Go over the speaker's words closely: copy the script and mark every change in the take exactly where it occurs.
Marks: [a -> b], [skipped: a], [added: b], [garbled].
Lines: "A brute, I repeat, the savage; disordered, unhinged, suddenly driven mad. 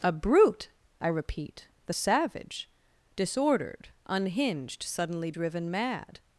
"A brute, I repeat, the savage; disordered, unhinged, suddenly driven mad.